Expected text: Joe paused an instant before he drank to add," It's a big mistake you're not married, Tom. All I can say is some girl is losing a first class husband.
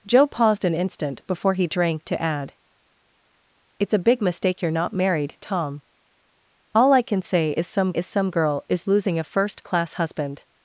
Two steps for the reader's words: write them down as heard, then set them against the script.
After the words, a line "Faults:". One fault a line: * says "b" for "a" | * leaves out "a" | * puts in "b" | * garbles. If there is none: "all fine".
Joe paused an instant before he drank to add," It's a big mistake you're not married, Tom. All I can say is some is some girl is losing a first class husband.
Faults:
* puts in "is some"